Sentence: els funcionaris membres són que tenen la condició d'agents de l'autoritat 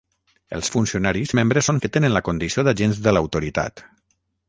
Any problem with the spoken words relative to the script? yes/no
no